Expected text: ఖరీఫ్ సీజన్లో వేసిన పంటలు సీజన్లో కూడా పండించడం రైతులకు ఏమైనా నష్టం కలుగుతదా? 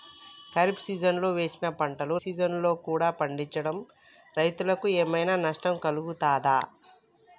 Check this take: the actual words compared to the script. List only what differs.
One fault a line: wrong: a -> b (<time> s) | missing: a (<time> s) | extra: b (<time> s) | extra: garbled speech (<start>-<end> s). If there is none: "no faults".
no faults